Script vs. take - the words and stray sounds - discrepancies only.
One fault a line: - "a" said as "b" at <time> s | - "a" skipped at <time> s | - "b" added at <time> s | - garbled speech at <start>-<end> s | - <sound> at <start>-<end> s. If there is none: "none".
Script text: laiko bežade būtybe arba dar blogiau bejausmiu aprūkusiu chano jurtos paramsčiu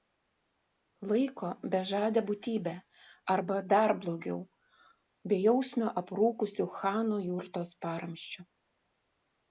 none